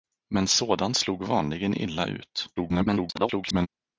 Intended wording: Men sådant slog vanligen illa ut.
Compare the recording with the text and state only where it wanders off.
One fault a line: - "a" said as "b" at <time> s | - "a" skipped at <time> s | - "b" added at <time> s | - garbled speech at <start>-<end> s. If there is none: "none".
- garbled speech at 2.6-3.7 s